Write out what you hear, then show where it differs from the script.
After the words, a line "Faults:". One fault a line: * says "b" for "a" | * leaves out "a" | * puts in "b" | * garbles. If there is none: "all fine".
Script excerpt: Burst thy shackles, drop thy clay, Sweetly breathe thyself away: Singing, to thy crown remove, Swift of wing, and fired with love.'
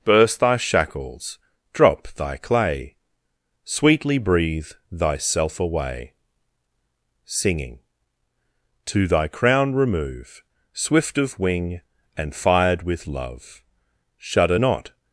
Burst thy shackles, drop thy clay, Sweetly breathe thyself away: Singing, to thy crown remove, Swift of wing, and fired with love.' 'Shudder not
Faults:
* puts in "Shudder not"